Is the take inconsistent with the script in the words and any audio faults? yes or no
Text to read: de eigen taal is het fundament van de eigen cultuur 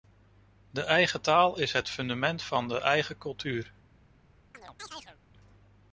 yes